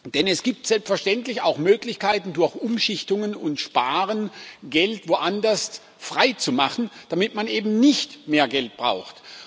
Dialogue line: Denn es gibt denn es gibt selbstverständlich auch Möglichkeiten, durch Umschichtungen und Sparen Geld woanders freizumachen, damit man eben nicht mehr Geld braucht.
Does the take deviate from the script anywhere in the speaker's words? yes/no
yes